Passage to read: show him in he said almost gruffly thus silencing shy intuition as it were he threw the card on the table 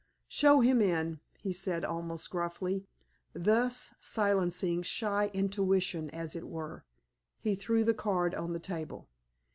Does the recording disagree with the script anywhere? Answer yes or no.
no